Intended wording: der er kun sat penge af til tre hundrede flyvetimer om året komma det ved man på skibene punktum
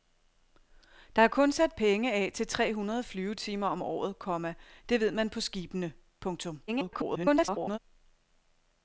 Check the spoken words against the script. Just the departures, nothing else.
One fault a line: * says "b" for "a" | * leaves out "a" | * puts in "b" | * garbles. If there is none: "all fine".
* garbles